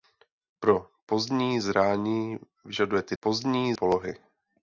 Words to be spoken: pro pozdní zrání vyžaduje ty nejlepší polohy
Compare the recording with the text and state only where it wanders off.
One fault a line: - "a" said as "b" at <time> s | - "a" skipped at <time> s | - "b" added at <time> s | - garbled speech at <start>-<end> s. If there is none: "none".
- "nejlepší" said as "pozdní" at 3.2 s